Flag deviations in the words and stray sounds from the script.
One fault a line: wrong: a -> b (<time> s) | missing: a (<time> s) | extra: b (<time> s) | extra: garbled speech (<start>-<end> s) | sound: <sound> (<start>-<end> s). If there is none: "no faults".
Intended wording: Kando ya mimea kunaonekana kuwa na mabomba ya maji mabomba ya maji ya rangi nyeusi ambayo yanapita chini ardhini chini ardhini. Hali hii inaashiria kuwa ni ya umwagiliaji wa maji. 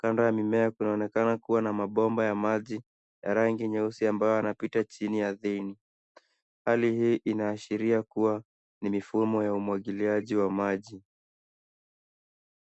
missing: mabomba (2.8 s)
missing: maji ya (3.3 s)
missing: chini ardhini (5.8 s)
extra: mifumo (8.9 s)